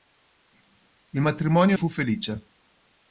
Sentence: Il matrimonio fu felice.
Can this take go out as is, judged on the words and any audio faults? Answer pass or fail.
pass